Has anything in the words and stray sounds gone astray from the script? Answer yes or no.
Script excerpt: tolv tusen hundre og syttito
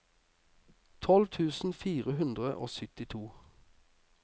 yes